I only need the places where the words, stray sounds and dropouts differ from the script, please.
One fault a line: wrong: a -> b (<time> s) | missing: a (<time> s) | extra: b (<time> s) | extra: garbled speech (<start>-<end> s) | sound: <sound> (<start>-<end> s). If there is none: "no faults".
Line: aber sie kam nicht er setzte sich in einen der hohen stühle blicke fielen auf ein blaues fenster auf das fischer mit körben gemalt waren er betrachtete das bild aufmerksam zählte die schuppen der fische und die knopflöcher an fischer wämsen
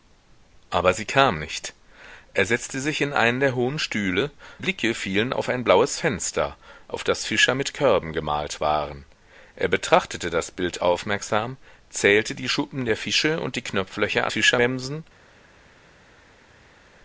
no faults